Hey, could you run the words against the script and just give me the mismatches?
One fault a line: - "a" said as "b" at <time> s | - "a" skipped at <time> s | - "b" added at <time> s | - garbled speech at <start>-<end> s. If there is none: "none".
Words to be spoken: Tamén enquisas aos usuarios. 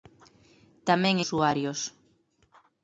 - "enquisas aos" skipped at 1.1 s